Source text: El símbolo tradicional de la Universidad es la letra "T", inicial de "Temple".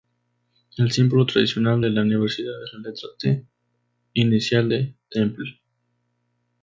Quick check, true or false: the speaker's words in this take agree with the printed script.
true